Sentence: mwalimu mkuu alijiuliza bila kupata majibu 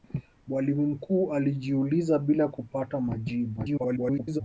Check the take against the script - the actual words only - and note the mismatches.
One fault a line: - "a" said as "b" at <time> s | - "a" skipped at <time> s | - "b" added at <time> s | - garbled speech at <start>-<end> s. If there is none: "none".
- garbled speech at 3.6-4.4 s